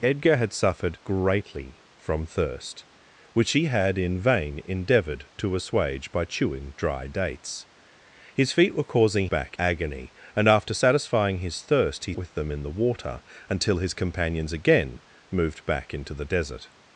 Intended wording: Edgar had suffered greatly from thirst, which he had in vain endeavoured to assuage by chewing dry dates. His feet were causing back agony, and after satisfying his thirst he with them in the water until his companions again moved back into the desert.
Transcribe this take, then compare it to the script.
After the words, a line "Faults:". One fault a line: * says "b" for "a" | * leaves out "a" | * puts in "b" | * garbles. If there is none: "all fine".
Edgar had suffered greatly from thirst, which he had in vain endeavoured to assuage by chewing dry dates. His feet were causing back agony, and after satisfying his thirst he with them in the water until his companions again moved back into the desert.
Faults:
all fine